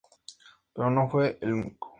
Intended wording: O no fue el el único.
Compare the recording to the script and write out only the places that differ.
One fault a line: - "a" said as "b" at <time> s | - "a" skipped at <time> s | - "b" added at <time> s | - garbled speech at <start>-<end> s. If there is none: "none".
- "O" said as "Pero" at 0.7 s
- "el" skipped at 1.5 s